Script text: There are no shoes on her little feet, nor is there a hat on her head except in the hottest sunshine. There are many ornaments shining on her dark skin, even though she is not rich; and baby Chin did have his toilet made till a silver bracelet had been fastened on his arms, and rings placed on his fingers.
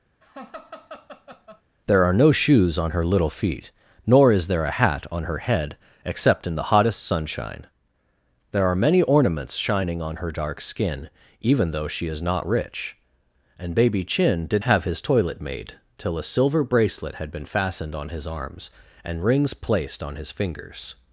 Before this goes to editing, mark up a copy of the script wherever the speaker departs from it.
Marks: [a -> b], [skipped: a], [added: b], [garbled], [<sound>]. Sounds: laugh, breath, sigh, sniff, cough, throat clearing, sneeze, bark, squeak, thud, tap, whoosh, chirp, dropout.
[laugh] There are no shoes on her little feet, nor is there a hat on her head except in the hottest sunshine. There are many ornaments shining on her dark skin, even though she is not rich; and baby Chin did have his toilet made till a silver bracelet had been fastened on his arms, and rings placed on his fingers.